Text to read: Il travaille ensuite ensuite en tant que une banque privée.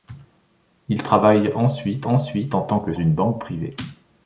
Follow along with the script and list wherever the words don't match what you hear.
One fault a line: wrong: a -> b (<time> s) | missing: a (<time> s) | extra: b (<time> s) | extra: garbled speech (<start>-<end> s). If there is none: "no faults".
no faults